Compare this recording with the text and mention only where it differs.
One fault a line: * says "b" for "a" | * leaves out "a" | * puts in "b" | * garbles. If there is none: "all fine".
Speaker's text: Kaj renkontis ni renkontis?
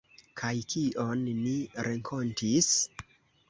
* says "kion" for "renkontis"